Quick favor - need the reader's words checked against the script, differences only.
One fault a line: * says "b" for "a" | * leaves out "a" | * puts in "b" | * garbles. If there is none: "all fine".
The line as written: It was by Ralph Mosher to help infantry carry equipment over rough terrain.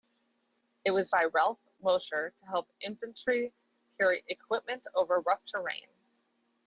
all fine